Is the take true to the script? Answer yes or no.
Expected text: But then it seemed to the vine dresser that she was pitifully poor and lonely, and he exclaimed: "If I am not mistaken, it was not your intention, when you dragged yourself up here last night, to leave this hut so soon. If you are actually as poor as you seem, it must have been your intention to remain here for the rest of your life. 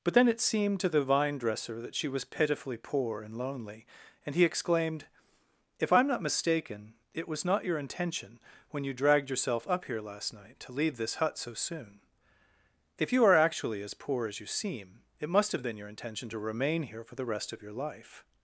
yes